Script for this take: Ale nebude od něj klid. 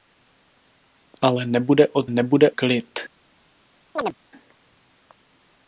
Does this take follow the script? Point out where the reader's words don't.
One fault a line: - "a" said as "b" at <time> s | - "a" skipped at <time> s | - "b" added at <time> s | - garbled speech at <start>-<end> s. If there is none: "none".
- "něj" said as "nebude" at 2.1 s